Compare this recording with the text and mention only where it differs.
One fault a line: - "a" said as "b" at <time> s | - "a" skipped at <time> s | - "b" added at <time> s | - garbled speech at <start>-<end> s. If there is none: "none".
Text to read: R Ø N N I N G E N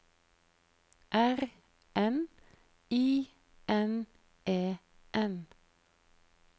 - "Ø" skipped at 1.5 s
- "N" skipped at 2.3 s
- "G" skipped at 4.1 s